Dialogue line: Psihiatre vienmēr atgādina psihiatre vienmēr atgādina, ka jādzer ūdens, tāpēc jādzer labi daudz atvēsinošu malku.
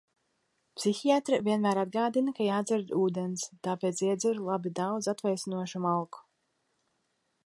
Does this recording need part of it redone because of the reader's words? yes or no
yes